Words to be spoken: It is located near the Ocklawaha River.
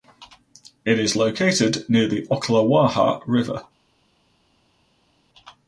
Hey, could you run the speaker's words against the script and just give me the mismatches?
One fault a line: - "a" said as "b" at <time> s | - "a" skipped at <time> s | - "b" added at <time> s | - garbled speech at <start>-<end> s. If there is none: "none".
none